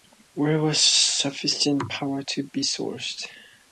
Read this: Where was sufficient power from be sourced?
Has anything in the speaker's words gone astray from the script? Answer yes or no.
yes